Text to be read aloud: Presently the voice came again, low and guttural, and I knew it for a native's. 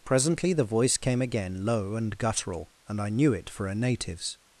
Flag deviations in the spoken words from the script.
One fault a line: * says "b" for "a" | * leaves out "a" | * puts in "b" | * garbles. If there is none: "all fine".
all fine